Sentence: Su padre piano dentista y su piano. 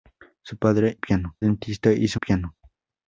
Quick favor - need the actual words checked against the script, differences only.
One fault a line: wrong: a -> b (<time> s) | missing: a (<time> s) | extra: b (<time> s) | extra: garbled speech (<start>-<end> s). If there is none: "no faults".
no faults